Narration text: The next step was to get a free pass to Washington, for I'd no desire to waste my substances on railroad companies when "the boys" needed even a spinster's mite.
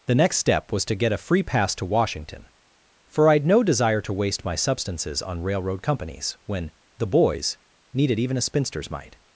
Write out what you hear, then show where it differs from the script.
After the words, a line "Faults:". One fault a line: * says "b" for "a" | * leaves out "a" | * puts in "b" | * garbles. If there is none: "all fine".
The next step was to get a free pass to Washington, for I'd no desire to waste my substances on railroad companies when "the boys" needed even a spinster's mite.
Faults:
all fine